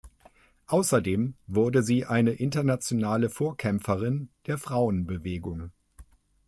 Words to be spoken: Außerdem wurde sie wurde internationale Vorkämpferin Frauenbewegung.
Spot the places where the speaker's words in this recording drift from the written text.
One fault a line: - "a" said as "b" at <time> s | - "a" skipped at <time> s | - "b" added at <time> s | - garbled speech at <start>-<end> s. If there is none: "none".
- "wurde" said as "eine" at 2.1 s
- "der" added at 4.5 s